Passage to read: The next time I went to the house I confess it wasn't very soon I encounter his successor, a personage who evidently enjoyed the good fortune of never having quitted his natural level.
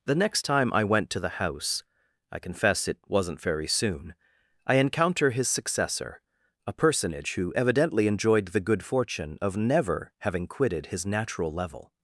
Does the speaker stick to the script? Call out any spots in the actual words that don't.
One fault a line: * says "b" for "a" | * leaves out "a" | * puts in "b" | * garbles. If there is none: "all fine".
all fine